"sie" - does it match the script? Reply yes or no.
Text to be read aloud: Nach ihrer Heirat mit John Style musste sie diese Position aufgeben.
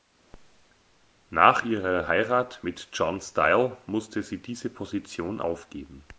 yes